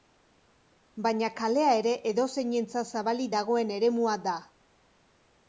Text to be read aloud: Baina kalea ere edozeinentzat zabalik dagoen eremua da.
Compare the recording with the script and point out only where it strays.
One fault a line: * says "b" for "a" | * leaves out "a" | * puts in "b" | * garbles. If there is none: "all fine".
all fine